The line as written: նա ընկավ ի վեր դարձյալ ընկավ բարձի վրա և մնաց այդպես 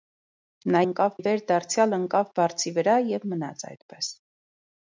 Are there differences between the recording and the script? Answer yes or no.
no